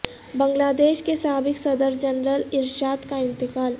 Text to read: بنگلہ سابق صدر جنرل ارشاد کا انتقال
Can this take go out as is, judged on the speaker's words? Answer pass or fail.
fail